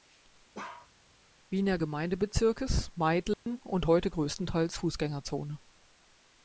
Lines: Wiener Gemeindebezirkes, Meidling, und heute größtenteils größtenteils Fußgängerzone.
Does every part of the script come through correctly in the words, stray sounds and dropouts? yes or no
no